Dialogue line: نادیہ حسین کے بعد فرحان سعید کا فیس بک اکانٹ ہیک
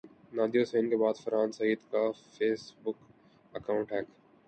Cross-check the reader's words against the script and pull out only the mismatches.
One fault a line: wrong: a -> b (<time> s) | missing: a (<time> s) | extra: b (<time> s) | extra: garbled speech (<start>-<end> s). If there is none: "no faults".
no faults